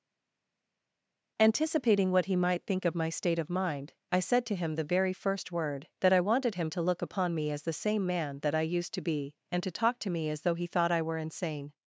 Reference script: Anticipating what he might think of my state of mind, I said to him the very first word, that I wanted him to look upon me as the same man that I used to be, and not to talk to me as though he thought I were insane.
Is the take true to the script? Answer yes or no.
no